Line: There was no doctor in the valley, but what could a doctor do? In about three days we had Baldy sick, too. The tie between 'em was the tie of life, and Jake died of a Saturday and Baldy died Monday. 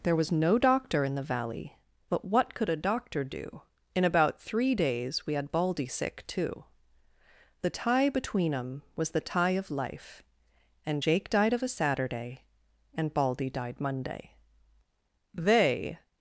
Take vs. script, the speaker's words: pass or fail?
fail